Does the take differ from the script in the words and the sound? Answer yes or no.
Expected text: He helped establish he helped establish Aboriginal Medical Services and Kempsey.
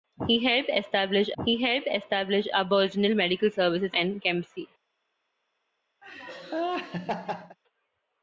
yes